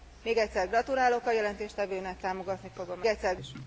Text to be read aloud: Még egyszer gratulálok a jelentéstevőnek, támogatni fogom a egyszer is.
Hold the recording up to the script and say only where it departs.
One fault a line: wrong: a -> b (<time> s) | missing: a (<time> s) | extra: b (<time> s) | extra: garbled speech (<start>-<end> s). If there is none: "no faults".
no faults